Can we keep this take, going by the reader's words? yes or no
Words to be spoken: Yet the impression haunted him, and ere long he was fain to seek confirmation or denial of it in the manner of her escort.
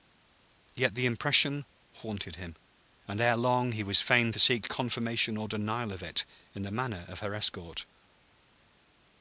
yes